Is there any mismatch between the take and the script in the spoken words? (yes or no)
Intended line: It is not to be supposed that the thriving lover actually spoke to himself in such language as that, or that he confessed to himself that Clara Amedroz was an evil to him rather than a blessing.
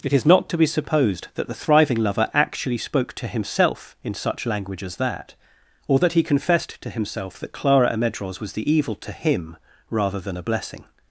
yes